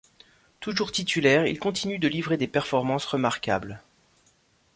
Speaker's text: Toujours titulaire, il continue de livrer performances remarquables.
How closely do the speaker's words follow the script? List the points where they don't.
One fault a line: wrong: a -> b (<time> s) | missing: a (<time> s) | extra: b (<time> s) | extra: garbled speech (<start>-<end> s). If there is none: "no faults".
extra: des (2.4 s)